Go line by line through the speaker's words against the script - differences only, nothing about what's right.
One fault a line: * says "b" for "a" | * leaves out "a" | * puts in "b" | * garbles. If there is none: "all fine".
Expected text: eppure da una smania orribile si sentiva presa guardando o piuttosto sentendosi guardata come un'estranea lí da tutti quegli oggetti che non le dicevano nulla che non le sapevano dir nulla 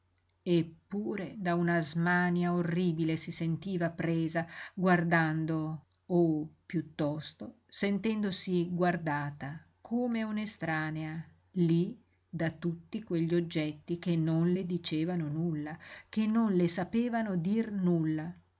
all fine